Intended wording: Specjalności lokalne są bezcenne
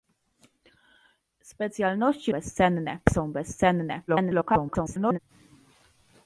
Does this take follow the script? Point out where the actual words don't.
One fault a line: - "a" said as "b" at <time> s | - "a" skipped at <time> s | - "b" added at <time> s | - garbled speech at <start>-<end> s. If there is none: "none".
- "lokalne" said as "bezcenne" at 2.3 s
- garbled speech at 4.1-5.2 s